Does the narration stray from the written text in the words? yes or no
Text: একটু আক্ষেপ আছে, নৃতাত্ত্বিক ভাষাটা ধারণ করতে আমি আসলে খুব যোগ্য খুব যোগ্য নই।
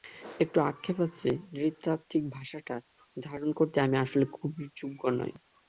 yes